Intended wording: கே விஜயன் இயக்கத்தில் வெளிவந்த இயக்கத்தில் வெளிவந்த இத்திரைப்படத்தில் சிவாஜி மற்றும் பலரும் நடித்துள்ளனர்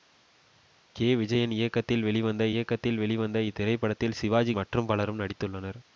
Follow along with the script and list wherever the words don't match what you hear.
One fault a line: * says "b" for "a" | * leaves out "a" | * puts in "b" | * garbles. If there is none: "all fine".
all fine